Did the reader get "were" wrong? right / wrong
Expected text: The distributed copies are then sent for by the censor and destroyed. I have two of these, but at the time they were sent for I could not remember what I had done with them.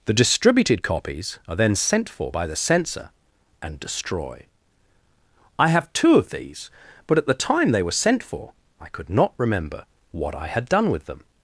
right